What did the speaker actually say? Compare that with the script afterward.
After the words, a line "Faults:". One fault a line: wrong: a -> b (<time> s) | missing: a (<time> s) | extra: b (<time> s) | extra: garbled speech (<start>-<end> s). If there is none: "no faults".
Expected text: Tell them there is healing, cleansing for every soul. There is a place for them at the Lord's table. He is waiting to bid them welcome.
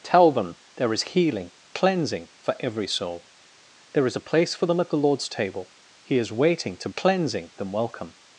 Tell them there is healing, cleansing for every soul. There is a place for them at the Lord's table. He is waiting to cleansing them welcome.
Faults:
wrong: bid -> cleansing (7.0 s)